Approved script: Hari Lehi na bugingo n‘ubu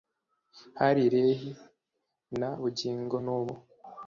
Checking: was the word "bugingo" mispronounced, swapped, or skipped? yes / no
no